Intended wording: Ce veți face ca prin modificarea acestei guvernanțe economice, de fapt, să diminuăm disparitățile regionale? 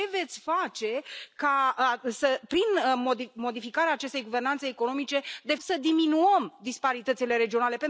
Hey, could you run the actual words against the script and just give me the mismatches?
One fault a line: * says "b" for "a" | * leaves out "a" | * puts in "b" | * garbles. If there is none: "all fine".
* leaves out "fapt"